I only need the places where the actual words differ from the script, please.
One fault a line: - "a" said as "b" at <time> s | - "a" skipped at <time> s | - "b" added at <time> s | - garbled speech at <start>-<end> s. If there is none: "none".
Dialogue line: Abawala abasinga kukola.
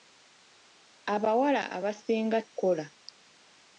none